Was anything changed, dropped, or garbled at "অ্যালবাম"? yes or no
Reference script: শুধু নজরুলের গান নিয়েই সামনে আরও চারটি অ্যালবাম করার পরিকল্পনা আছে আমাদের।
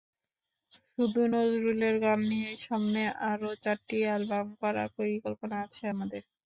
no